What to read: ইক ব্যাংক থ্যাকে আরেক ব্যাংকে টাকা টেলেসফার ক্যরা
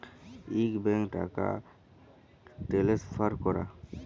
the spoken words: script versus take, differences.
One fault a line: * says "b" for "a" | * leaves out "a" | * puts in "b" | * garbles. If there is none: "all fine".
* leaves out "থ্যাকে আরেক ব্যাংকে"